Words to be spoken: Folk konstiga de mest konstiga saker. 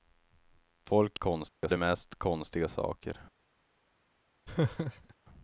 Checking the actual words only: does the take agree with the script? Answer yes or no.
yes